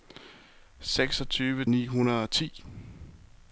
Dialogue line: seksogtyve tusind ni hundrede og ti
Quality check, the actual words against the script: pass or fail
fail